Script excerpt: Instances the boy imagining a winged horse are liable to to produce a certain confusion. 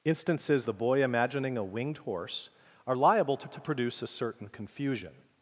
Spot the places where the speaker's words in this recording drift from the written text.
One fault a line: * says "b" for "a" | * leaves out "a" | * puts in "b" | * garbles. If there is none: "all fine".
all fine